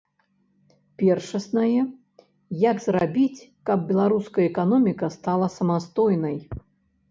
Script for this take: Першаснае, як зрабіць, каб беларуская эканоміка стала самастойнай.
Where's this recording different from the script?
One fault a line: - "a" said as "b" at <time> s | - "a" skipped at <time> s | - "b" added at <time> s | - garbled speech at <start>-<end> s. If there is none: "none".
none